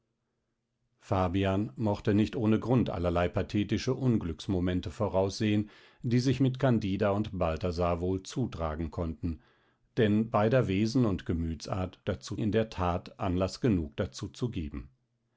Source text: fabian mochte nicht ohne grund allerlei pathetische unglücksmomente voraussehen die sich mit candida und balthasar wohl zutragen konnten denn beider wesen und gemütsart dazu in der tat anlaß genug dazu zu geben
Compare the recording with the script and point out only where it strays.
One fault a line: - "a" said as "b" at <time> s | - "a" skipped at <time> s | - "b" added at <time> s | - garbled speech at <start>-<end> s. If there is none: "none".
none